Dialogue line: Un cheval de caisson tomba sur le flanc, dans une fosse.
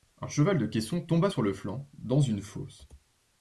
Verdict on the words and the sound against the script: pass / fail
pass